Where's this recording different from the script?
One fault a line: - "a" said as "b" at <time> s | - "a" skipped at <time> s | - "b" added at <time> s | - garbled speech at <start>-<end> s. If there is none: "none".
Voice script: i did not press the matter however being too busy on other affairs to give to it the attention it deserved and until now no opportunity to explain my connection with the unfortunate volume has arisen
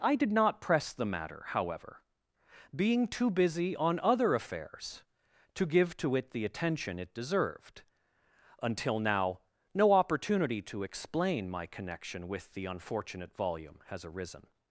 - "and" skipped at 7.8 s